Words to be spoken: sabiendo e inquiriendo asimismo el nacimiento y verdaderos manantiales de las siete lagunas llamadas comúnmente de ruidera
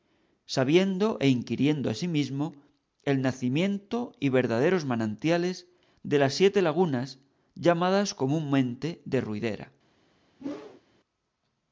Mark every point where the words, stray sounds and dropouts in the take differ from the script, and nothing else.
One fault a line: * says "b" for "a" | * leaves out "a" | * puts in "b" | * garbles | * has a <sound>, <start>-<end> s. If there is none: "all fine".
* has a whoosh, 10.4-10.8 s